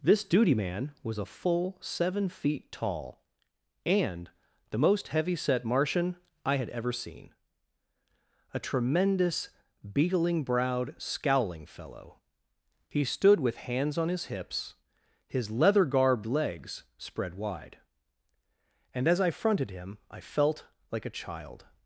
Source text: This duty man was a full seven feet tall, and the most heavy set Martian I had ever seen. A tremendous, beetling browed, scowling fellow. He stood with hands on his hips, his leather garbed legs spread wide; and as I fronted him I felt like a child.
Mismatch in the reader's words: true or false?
false